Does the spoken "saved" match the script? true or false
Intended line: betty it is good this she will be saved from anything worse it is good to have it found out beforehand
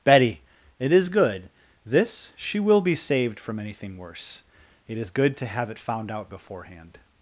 true